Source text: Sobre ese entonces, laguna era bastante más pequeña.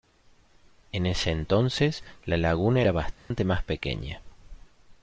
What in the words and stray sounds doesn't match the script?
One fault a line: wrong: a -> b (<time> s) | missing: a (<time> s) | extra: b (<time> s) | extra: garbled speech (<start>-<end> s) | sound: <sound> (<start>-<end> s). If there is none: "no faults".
wrong: Sobre -> En (0.9 s)
extra: la (2.2 s)
sound: dropout (3.2-3.3 s)